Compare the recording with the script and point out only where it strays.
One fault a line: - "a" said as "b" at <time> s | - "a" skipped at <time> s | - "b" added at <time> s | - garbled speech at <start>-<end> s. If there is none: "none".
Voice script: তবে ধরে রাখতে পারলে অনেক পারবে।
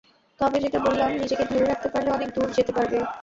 - "যেটা বললাম নিজেকে" added at 0.6 s
- "দূর যেতে" added at 2.4 s